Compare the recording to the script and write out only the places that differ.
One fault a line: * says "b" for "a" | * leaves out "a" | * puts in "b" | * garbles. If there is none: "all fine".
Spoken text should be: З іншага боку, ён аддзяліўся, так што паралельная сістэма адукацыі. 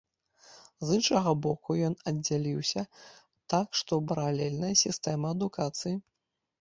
all fine